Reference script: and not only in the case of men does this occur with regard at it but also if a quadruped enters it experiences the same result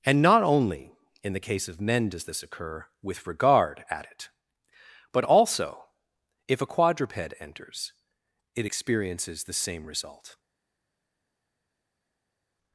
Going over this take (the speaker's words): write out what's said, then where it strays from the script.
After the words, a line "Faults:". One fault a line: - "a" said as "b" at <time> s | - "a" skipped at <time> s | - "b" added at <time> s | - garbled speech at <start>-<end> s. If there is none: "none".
and not only in the case of men does this occur with regard at it but also if a quadruped enters it experiences the same result
Faults:
none